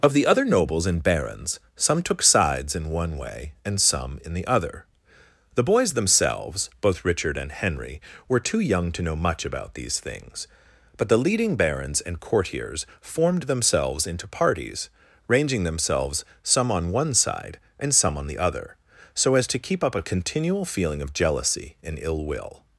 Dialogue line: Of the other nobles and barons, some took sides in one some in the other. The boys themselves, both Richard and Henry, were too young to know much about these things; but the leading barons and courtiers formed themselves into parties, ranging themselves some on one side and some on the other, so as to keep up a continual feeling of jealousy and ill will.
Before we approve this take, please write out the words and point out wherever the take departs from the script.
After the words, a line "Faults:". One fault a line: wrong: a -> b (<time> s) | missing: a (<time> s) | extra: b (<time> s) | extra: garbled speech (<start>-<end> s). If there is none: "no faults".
Of the other nobles and barons, some took sides in one way and some in the other. The boys themselves, both Richard and Henry, were too young to know much about these things; but the leading barons and courtiers formed themselves into parties, ranging themselves some on one side and some on the other, so as to keep up a continual feeling of jealousy and ill will.
Faults:
extra: way and (3.2 s)